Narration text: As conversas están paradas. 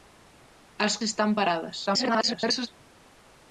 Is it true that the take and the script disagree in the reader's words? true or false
true